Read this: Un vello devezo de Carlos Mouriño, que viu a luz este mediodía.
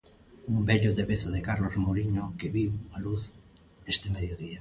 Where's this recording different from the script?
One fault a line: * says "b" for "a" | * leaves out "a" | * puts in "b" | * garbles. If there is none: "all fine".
all fine